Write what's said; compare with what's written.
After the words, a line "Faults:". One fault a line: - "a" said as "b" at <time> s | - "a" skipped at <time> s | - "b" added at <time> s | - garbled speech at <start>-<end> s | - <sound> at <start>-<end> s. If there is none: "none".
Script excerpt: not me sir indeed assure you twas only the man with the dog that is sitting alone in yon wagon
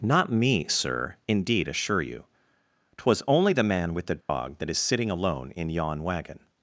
not me sir indeed assure you twas only the man with the dog that is sitting alone in yon wagon
Faults:
- dropout at 4.2-4.3 s